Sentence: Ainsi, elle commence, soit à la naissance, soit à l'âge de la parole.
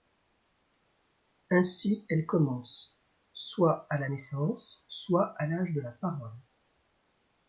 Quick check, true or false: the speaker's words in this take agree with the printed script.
true